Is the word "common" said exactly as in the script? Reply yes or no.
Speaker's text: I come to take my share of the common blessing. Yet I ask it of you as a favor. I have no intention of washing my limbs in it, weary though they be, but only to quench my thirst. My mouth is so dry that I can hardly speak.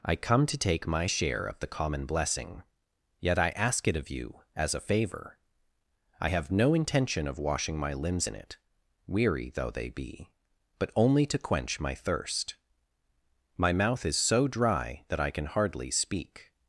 yes